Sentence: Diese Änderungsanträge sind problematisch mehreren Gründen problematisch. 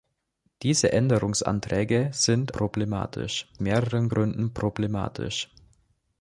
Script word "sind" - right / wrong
right